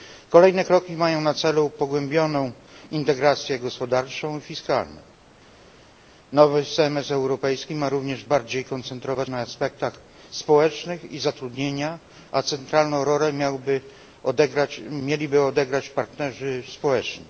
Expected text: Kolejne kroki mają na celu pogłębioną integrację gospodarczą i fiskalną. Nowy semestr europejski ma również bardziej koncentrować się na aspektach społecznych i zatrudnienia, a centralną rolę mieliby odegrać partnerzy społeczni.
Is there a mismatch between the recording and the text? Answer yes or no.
yes